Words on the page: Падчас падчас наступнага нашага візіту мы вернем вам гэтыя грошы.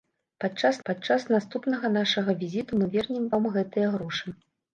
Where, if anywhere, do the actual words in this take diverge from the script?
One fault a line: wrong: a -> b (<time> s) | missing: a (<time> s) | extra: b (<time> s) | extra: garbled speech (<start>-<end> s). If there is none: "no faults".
no faults